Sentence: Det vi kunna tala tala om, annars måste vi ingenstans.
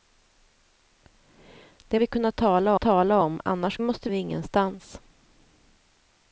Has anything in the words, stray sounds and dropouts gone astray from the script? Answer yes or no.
no